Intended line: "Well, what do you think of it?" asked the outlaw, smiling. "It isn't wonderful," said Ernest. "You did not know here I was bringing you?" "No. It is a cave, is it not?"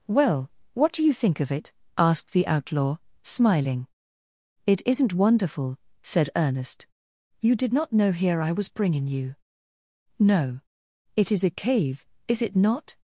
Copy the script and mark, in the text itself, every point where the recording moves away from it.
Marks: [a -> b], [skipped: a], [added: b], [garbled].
"Well, what do you think of it?" asked the outlaw, smiling. "It isn't wonderful," said Ernest. "You did not know here I was bringing you?" "No. It is a cave, is it not?"